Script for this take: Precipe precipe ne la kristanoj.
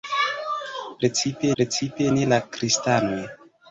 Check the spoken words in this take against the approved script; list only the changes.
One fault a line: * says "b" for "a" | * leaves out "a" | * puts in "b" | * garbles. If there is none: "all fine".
all fine